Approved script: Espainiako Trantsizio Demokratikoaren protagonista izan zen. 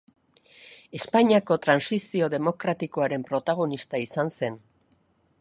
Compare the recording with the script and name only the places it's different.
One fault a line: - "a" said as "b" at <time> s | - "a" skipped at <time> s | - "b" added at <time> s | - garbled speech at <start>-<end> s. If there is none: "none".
none